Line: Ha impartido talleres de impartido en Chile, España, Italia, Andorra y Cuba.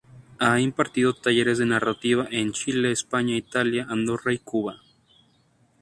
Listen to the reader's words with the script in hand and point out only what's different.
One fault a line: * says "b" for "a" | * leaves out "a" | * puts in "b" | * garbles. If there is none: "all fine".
* says "narrativa" for "impartido"